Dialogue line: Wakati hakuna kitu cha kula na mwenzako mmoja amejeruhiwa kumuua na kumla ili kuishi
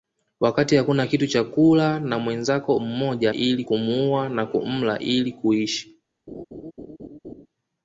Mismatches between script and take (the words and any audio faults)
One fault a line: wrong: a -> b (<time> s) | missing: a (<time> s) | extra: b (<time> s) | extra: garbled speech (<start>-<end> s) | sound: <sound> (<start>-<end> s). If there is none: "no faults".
wrong: amejeruhiwa -> ili (3.3 s)
sound: laugh (6.3-7.5 s)